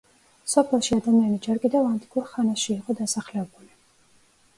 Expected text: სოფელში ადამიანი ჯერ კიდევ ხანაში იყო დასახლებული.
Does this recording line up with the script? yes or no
no